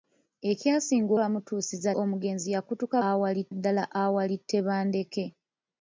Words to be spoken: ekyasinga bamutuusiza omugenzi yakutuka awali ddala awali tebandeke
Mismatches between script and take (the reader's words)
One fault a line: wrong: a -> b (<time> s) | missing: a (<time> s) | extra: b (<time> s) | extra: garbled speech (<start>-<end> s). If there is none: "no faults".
no faults